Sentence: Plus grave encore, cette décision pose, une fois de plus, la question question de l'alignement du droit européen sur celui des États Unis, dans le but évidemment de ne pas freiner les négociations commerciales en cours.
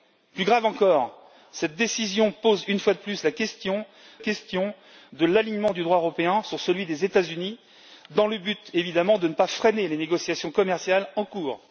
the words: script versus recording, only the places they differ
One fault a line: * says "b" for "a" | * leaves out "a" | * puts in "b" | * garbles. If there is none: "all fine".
all fine